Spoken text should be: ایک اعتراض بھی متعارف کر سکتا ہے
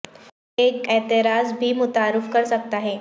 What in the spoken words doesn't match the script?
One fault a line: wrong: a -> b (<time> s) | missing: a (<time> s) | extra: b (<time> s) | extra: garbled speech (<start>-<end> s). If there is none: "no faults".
no faults